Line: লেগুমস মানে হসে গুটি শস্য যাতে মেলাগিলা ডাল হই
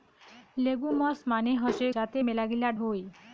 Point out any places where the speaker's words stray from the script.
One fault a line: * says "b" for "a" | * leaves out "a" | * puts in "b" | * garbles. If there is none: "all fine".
* leaves out "গুটি শস্য"
* leaves out "ডাল"